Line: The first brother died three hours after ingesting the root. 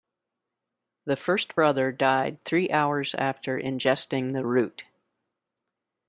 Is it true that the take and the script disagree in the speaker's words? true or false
false